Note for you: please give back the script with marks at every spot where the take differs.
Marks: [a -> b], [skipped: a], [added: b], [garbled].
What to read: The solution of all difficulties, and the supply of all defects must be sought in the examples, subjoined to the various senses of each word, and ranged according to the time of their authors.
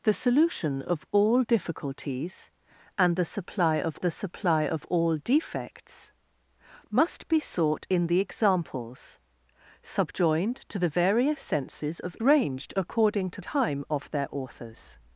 The solution of all difficulties, and the supply of [added: the supply of] all defects must be sought in the examples, subjoined to the various senses of [skipped: each word, and] ranged according to [skipped: the] time of their authors.